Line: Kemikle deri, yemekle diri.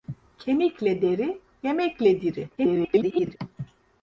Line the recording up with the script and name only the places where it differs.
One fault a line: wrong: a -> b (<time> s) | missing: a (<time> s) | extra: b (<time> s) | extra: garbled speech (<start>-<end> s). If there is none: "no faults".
extra: garbled speech (2.6-3.4 s)